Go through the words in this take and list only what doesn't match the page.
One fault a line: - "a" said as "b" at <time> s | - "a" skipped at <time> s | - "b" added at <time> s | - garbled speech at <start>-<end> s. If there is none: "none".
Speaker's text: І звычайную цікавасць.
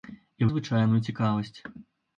none